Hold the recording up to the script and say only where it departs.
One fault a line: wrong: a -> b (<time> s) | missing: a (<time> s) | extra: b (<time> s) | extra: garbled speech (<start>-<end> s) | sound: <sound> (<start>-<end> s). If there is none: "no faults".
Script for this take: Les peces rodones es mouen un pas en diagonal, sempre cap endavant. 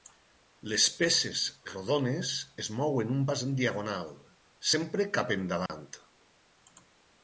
sound: dropout (5.7-5.7 s)